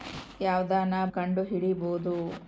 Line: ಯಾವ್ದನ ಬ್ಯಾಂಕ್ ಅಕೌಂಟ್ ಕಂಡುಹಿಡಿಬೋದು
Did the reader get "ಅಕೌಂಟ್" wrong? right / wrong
wrong